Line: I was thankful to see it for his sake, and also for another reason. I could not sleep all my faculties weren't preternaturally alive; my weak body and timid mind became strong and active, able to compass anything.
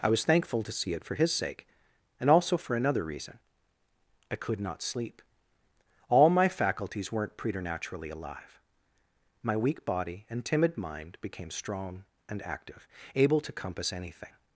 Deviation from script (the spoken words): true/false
false